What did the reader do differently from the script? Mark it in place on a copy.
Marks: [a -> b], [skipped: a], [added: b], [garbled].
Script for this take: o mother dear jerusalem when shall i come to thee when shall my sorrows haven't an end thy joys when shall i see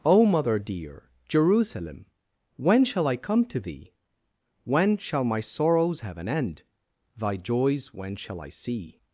o mother dear jerusalem when shall i come to thee when shall my sorrows [haven't -> have] an end thy joys when shall i see